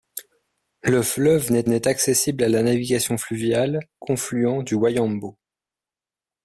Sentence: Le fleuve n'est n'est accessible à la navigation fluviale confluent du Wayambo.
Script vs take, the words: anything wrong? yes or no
no